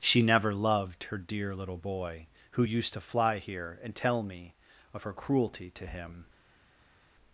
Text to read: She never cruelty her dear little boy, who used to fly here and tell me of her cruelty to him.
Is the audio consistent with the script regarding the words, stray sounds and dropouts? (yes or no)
no